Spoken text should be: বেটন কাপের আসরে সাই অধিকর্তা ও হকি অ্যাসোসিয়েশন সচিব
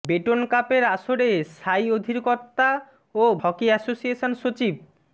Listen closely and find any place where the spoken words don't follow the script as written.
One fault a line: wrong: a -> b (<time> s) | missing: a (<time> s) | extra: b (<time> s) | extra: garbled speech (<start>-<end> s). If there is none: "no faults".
no faults